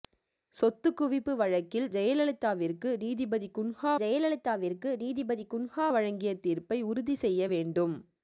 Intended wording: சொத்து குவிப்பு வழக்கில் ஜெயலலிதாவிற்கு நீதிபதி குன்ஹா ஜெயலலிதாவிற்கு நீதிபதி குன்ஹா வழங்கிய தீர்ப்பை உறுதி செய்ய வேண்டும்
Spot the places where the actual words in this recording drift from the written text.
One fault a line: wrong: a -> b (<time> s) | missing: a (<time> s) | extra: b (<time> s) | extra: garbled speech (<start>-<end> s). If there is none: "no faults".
no faults